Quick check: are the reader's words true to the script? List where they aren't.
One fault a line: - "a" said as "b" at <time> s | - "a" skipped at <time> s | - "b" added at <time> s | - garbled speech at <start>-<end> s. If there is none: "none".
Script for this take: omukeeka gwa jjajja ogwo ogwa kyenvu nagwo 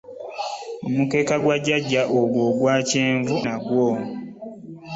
none